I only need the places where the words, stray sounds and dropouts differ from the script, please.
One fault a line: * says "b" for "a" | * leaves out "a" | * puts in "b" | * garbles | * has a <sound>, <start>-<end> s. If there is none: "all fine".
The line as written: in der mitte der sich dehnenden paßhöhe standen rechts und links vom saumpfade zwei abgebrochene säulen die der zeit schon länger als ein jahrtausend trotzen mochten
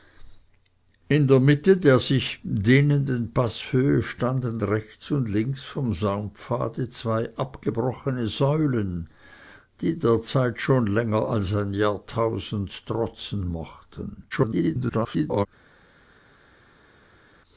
* garbles